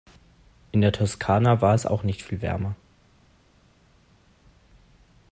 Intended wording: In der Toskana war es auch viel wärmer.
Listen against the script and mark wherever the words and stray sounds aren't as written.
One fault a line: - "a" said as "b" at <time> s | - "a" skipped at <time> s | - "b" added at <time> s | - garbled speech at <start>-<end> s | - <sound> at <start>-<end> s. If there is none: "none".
- "nicht" added at 2.0 s